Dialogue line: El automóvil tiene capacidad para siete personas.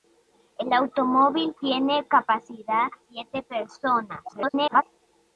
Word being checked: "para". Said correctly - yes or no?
no